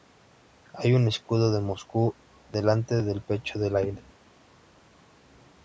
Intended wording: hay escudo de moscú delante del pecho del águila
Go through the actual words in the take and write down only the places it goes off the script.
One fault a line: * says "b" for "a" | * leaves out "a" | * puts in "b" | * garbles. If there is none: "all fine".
* puts in "un"